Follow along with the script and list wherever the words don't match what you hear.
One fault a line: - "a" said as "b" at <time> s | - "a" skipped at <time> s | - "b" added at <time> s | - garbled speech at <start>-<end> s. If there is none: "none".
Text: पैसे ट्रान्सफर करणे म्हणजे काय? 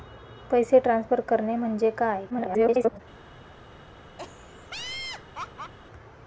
- garbled speech at 2.3-3.0 s